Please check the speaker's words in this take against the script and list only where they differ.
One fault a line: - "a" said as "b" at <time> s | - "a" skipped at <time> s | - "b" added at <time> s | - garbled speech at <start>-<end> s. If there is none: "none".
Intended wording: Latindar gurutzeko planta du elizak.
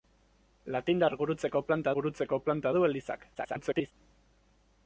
- "gurutzeko planta" added at 1.9 s
- garbled speech at 3.3-3.9 s